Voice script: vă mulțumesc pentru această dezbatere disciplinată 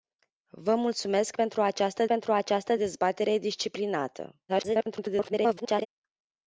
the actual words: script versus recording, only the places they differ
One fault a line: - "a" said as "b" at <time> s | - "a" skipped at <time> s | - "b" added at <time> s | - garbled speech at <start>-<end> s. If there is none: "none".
- "pentru această" added at 2.0 s
- garbled speech at 4.5-5.9 s